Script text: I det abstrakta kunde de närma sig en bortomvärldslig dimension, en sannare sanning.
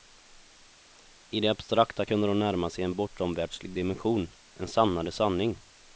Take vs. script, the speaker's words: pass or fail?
pass